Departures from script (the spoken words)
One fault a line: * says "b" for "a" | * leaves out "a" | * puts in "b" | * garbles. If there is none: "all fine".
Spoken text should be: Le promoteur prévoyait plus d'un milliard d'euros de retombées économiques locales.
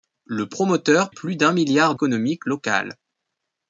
* leaves out "prévoyait"
* leaves out "d'euros de retombées"